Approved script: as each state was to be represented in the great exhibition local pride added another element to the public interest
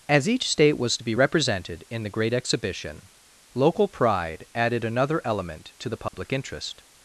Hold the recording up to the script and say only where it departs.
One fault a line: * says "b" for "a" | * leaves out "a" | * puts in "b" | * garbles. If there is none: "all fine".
all fine